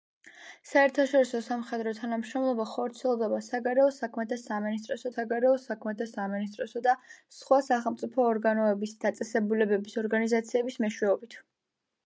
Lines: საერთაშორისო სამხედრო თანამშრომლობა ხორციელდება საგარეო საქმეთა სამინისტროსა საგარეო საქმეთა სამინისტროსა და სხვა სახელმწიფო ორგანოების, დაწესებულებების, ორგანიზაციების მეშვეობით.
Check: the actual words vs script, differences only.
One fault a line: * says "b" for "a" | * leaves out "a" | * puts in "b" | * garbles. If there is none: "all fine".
all fine